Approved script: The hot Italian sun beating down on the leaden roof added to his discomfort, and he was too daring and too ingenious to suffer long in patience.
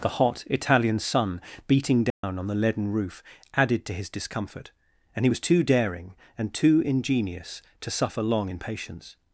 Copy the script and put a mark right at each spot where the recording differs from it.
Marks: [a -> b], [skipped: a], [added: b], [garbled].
The hot Italian sun beating down on the leaden roof added to his discomfort, and he was too daring and too ingenious to suffer long in patience.